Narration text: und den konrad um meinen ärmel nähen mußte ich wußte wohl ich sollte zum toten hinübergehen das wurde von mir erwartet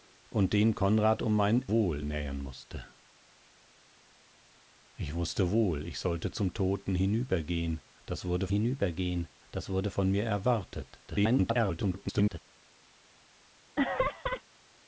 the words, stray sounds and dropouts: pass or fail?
fail